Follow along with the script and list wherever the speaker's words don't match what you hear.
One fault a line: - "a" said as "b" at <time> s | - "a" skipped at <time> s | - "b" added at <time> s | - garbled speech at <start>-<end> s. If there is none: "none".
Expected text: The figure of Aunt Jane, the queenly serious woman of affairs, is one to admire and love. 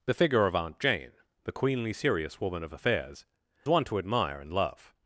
- "is" skipped at 3.2 s